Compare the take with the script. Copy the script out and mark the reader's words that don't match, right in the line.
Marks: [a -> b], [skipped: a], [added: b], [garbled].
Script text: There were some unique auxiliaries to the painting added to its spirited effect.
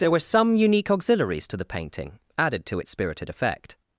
There were some unique auxiliaries to the painting added to its spirited effect.